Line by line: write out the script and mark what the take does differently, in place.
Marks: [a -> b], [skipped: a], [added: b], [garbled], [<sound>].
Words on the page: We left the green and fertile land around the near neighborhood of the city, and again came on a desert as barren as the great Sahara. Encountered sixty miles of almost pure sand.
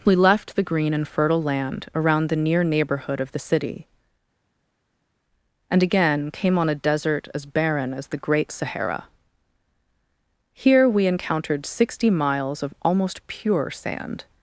We left the green and fertile land around the near neighborhood of the city, and again came on a desert as barren as the great Sahara. [added: Here we] Encountered sixty miles of almost pure sand.